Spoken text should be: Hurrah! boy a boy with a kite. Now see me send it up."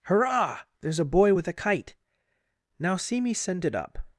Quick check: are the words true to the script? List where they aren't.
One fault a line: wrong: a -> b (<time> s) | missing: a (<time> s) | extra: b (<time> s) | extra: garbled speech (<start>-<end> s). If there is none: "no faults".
wrong: boy -> there's (0.8 s)